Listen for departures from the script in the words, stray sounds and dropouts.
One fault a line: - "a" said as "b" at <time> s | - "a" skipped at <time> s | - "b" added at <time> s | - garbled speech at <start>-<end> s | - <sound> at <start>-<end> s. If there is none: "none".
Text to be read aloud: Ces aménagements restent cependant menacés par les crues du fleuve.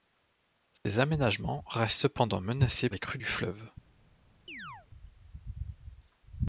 - "par" skipped at 2.9 s
- chirp at 4.5-4.9 s